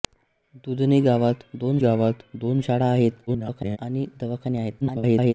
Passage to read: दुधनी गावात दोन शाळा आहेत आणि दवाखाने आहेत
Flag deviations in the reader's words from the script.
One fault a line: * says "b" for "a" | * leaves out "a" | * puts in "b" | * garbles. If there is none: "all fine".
* puts in "गावात दोन"
* garbles
* garbles